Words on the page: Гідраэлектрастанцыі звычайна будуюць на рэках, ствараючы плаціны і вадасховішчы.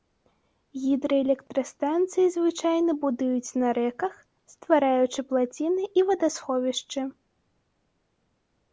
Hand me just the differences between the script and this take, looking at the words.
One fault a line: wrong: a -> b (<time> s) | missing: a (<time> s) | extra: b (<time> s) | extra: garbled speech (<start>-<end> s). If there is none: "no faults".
no faults